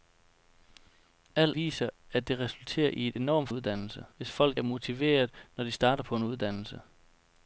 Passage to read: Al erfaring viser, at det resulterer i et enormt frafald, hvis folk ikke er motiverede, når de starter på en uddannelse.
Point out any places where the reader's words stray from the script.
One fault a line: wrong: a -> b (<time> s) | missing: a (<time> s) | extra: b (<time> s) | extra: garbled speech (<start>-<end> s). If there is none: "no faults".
missing: erfaring (1.5 s)
wrong: frafald -> uddannelse (3.5 s)
missing: ikke (4.6 s)